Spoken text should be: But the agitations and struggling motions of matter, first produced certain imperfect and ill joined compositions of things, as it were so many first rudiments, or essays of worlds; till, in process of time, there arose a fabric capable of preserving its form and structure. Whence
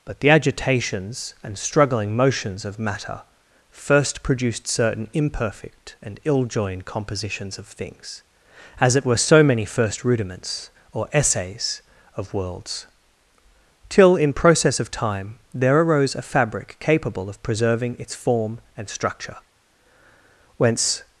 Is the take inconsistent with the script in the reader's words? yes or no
no